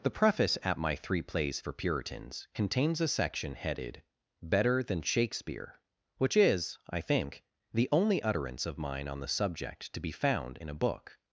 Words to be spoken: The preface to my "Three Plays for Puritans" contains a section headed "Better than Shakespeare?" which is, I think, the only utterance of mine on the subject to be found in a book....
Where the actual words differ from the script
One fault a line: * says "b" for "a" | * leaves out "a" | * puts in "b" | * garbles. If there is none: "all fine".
* says "at" for "to"